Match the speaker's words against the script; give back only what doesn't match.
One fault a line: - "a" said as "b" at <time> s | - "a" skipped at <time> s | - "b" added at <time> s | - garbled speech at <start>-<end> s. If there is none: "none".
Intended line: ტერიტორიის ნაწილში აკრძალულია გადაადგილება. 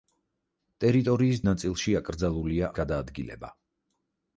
none